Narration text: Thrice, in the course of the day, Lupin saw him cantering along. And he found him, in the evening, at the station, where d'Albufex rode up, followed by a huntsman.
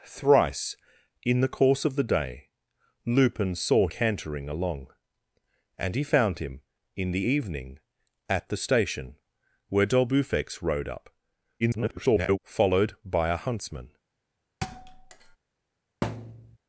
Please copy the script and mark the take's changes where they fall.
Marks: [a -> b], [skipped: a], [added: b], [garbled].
Thrice, in the course of the day, Lupin saw [skipped: him] cantering along. And he found him, in the evening, at the station, where d'Albufex rode up, [garbled] followed by a huntsman.